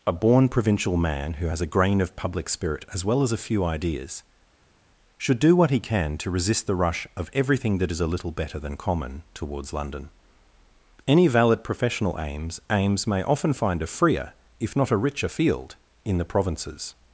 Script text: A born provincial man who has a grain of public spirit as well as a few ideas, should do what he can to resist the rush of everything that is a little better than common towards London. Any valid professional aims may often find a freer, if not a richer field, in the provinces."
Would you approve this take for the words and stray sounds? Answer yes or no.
no